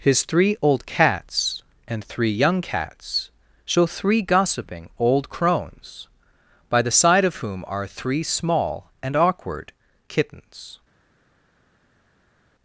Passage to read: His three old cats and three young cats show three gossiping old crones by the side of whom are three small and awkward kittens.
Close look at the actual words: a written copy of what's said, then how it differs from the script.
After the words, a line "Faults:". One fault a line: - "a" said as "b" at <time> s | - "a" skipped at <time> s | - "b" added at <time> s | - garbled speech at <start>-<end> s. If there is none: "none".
His three old cats and three young cats show three gossiping old crones by the side of whom are three small and awkward kittens.
Faults:
none